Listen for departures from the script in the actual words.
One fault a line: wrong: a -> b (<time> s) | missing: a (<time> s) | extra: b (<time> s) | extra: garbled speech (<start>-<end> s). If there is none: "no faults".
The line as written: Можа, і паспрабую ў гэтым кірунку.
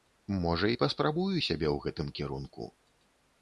extra: сябе (1.5 s)